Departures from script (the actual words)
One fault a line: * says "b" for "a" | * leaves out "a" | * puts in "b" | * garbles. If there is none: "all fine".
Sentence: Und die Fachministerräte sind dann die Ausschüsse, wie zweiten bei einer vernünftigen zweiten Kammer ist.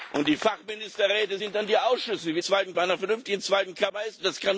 all fine